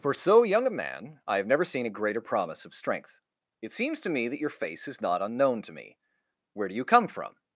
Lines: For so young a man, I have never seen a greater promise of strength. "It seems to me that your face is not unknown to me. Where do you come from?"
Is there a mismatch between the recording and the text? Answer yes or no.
no